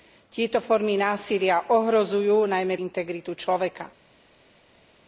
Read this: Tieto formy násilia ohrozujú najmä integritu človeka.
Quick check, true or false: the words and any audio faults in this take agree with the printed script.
true